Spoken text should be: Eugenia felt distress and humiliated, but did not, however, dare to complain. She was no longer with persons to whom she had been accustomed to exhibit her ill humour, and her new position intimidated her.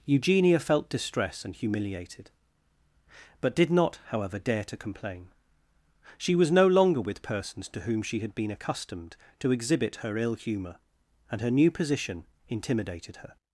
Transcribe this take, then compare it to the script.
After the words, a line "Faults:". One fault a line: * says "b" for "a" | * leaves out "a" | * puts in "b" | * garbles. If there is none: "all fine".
Eugenia felt distress and humiliated, but did not, however, dare to complain. She was no longer with persons to whom she had been accustomed to exhibit her ill humour, and her new position intimidated her.
Faults:
all fine